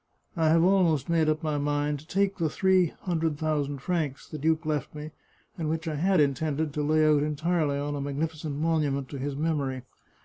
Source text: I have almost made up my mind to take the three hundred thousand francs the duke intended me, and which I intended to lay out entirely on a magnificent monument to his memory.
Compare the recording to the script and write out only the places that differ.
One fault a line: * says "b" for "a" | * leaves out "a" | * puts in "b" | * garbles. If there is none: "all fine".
* says "left" for "intended"
* puts in "had"